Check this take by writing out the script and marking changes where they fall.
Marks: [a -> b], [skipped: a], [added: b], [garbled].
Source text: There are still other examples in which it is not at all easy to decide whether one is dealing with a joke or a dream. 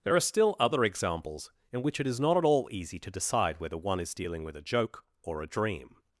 There are still other examples in which it is not at all easy to decide whether one is dealing with a joke or a dream.